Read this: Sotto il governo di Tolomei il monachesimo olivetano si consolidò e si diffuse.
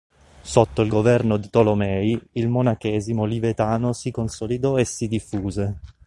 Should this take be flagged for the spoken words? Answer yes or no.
no